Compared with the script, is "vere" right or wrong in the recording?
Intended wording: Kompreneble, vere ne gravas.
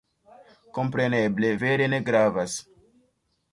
right